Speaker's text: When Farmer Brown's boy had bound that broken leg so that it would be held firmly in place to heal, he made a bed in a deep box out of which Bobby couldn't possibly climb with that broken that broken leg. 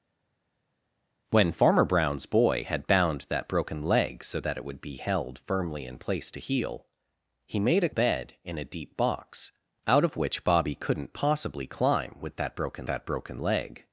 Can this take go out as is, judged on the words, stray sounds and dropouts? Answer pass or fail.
pass